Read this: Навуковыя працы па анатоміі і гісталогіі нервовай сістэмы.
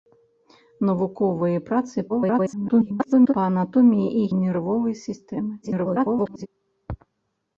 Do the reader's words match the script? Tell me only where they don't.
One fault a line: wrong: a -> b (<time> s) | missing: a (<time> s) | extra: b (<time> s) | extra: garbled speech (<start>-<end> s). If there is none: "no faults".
extra: garbled speech (2.1-3.3 s)
missing: гісталогіі (4.3 s)
extra: garbled speech (5.6-6.5 s)